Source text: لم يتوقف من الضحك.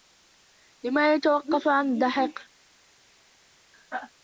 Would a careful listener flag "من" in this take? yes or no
yes